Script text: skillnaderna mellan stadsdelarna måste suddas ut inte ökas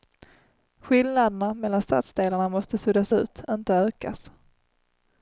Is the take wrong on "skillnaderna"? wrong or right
right